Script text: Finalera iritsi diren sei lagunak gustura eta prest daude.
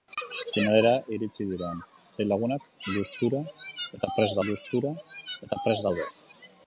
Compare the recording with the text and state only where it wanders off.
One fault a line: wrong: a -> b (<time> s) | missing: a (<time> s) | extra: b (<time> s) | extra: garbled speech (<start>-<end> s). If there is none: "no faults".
extra: gustura eta prest (4.5 s)